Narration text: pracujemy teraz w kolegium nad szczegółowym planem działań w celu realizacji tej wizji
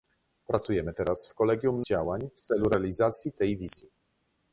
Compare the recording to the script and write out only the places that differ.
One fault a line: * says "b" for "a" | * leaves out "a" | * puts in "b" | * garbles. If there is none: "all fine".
* leaves out "nad szczegółowym planem"